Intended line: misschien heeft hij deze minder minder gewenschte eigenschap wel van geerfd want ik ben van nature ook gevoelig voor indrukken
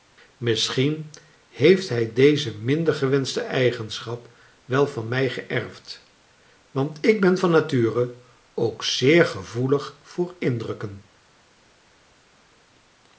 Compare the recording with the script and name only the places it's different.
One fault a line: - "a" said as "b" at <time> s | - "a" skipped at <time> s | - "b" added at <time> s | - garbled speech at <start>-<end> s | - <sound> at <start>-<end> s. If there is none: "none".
- "minder" skipped at 2.9 s
- "mij" added at 5.1 s
- "zeer" added at 8.8 s